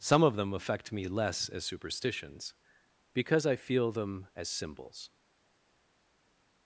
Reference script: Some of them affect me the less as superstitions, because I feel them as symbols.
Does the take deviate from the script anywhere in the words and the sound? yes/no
yes